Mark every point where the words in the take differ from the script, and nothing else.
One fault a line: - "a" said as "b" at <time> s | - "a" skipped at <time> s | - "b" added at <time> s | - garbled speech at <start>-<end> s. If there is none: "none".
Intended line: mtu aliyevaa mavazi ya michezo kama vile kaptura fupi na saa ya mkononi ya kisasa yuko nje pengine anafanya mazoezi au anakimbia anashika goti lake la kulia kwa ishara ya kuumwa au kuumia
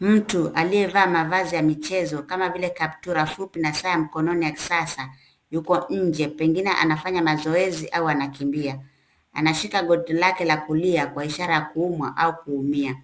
none